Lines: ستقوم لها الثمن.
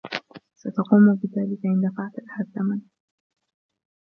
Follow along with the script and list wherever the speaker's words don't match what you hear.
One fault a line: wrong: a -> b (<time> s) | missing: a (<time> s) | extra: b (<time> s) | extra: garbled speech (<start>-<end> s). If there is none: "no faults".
extra: بذلك إن دفعت (1.1 s)